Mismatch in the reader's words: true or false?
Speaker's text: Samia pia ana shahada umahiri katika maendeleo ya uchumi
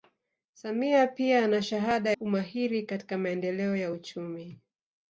false